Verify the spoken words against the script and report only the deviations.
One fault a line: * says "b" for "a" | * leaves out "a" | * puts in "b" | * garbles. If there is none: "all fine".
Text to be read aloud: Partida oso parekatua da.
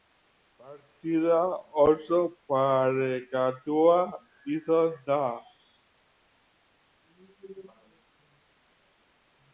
* puts in "izan"